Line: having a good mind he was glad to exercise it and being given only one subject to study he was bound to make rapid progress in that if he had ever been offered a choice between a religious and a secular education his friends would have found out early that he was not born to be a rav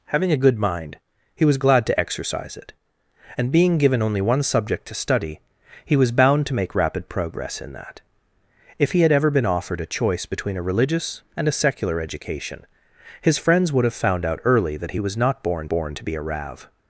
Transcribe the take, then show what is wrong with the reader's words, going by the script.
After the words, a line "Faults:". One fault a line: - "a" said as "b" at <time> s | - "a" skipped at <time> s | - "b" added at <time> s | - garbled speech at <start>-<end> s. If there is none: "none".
having a good mind he was glad to exercise it and being given only one subject to study he was bound to make rapid progress in that if he had ever been offered a choice between a religious and a secular education his friends would have found out early that he was not born born to be a rav
Faults:
- "born" added at 15.7 s